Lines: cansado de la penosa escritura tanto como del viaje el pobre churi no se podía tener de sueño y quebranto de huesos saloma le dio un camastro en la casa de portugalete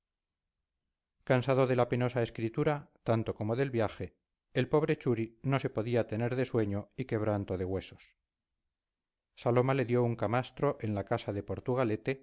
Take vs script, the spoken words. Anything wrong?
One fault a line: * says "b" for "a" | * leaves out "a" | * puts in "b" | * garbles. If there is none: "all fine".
all fine